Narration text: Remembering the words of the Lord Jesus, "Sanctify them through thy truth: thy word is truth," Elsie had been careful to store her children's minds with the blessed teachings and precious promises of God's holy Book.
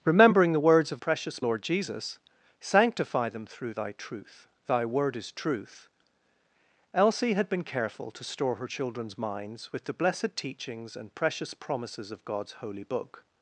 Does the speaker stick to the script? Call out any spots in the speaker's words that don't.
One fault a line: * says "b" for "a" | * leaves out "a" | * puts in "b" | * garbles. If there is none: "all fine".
* says "precious" for "the"